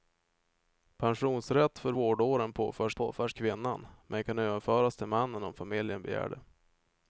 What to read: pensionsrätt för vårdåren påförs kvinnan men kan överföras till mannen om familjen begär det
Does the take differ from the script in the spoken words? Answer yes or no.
yes